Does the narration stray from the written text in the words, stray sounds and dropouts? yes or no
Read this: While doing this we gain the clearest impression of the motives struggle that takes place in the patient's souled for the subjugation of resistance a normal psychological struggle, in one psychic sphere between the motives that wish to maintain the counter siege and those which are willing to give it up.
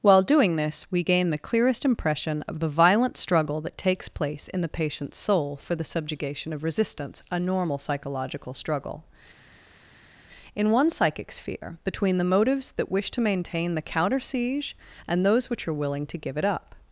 yes